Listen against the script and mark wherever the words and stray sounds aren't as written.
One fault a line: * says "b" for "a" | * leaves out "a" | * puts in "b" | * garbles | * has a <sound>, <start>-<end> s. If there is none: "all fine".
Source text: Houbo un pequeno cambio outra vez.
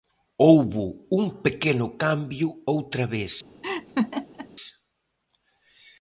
* has a laugh, 3.6-4.5 s